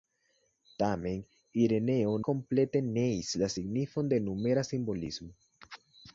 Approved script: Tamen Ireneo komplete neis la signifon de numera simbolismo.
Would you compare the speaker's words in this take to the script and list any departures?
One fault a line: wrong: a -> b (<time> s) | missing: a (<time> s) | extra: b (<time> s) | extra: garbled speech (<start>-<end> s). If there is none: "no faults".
no faults